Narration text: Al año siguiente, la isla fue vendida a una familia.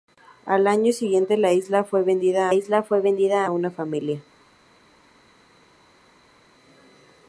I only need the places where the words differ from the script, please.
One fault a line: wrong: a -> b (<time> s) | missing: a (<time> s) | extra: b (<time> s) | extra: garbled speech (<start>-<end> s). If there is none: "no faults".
extra: isla fue vendida (2.5 s)